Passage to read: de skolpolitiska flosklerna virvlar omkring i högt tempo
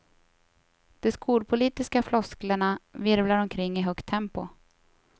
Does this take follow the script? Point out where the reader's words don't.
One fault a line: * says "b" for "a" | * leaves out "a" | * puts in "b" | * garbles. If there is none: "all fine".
all fine